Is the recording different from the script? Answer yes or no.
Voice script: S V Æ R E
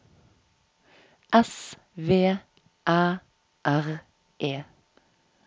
no